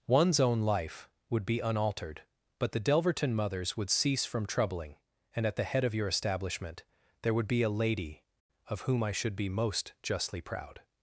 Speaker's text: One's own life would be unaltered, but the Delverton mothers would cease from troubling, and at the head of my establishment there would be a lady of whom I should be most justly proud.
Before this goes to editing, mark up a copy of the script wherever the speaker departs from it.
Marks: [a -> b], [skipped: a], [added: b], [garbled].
One's own life would be unaltered, but the Delverton mothers would cease from troubling, and at the head of [my -> your] establishment there would be a lady of whom I should be most justly proud.